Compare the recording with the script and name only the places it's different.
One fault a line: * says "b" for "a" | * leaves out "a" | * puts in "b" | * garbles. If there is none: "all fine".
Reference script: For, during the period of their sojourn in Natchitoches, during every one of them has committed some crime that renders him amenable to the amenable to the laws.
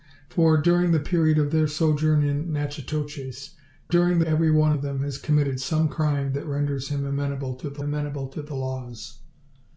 all fine